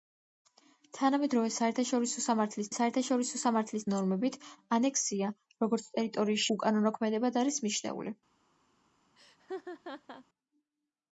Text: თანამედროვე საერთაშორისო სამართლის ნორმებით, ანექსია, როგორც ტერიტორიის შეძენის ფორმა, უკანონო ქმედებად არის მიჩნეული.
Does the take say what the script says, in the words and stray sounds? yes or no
no